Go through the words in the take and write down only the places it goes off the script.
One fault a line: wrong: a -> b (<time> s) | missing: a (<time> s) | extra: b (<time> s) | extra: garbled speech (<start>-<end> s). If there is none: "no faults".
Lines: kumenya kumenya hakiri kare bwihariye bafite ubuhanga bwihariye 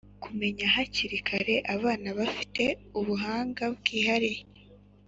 missing: kumenya (0.7 s)
wrong: bwihariye -> abana (1.8 s)